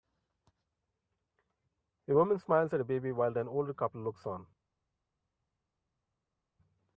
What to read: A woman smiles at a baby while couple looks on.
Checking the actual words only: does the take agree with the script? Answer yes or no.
no